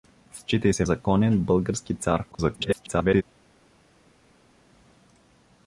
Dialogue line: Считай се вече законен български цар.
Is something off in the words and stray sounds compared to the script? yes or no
yes